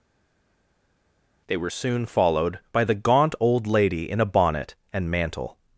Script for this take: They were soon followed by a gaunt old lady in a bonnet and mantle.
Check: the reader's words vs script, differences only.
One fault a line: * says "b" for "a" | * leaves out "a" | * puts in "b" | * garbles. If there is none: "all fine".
* says "the" for "a"